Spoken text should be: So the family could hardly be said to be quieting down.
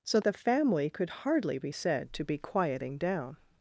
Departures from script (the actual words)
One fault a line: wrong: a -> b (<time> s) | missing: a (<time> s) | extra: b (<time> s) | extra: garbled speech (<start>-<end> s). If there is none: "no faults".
no faults